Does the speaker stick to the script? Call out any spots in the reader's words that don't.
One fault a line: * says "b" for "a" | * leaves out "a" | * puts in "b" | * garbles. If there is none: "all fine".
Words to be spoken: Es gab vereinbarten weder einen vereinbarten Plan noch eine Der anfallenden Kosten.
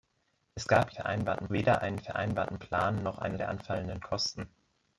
all fine